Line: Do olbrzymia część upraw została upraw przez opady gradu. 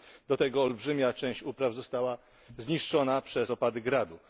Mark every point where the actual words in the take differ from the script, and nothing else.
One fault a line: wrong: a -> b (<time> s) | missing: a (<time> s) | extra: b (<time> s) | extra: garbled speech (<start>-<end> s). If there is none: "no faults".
extra: tego (0.4 s)
wrong: upraw -> zniszczona (2.6 s)